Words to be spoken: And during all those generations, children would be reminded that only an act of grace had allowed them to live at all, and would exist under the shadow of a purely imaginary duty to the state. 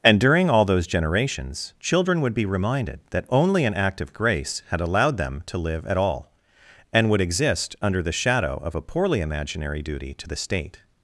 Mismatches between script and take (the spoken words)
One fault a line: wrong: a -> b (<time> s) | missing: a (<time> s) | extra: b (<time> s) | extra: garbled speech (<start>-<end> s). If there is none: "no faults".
wrong: purely -> poorly (8.8 s)